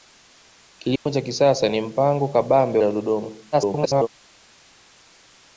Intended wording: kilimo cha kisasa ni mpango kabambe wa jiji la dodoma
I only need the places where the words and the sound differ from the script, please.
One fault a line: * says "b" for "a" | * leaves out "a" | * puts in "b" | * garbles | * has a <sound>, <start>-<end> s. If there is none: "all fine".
* has a dropout, 1.0-1.1 s
* leaves out "wa jiji"
* garbles